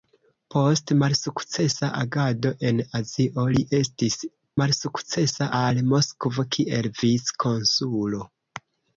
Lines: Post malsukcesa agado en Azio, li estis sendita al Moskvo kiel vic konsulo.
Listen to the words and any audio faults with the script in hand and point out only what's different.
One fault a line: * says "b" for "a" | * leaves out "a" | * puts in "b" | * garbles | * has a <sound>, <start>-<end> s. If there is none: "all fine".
* says "malsukcesa" for "sendita"